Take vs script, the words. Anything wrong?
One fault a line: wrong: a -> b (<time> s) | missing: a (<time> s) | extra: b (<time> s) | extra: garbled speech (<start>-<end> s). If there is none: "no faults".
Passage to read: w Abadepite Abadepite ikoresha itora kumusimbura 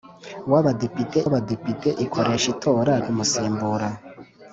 no faults